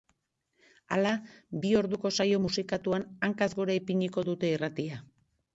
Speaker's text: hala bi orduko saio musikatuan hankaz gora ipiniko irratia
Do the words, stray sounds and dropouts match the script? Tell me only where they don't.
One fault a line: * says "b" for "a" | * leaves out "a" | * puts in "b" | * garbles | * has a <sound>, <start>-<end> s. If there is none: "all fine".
* puts in "dute"